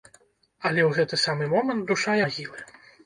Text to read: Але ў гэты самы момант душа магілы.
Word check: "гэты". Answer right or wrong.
right